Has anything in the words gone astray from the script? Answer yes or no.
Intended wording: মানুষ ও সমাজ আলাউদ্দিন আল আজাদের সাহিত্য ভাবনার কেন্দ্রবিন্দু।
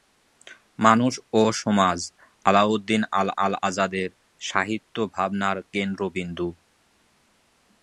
yes